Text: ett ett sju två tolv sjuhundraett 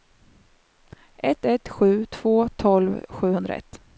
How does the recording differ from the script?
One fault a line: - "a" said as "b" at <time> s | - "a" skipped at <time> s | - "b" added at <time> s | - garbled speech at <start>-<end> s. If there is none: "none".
none